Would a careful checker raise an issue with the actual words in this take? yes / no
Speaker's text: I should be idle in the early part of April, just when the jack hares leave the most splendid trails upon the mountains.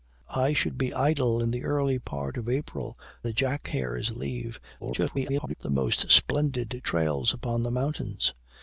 yes